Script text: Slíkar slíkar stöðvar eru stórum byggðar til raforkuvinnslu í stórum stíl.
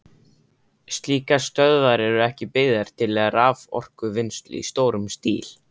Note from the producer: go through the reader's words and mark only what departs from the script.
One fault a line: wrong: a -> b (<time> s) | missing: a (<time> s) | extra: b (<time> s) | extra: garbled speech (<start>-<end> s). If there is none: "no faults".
missing: slíkar (1.4 s)
wrong: stórum -> ekki (2.3 s)